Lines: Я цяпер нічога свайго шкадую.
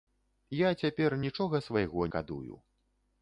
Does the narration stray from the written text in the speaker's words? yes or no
no